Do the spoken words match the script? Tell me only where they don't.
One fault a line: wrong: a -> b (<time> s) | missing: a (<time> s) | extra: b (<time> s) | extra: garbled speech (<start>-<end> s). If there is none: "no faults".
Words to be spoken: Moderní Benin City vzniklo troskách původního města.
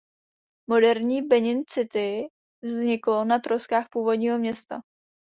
extra: na (3.2 s)